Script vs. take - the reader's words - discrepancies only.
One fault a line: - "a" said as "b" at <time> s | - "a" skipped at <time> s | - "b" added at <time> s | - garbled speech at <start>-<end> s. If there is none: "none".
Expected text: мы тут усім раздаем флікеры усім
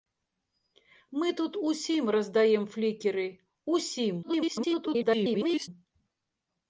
- garbled speech at 4.2-5.7 s